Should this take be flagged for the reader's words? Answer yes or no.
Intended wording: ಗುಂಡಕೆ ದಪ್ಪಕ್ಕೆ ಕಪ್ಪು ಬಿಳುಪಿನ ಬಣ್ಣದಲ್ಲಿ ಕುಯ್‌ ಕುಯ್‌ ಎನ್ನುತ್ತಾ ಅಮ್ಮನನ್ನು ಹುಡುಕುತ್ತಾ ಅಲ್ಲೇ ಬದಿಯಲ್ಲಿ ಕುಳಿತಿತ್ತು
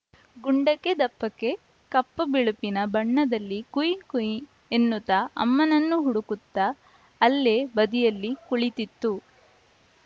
no